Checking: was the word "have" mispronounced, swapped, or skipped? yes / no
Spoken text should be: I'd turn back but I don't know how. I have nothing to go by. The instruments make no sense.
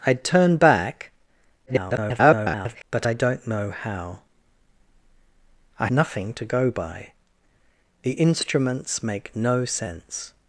yes